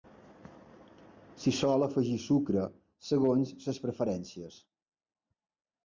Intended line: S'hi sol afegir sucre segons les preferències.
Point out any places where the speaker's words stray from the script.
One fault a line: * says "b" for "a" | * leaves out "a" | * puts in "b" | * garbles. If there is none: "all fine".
all fine